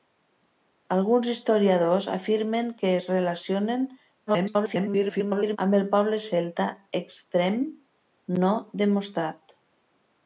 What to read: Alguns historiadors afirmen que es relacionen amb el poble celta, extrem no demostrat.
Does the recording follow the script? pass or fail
fail